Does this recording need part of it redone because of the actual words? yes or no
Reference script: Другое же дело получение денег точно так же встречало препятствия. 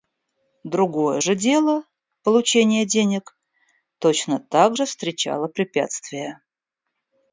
no